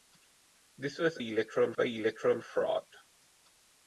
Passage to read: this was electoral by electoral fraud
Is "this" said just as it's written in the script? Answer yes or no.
yes